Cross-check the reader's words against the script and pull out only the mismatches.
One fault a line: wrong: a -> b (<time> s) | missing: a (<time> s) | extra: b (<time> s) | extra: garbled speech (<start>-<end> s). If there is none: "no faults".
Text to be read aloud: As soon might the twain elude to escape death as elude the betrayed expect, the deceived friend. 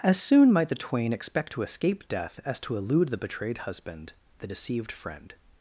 wrong: elude -> expect (1.1 s)
extra: to (2.6 s)
wrong: expect -> husband (3.6 s)